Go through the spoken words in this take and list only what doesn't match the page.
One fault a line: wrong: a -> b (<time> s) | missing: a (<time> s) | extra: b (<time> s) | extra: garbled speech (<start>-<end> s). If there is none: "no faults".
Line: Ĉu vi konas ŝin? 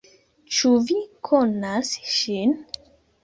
no faults